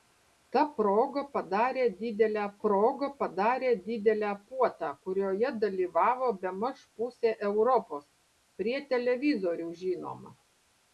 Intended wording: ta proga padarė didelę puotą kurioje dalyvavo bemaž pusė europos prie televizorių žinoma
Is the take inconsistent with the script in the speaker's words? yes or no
yes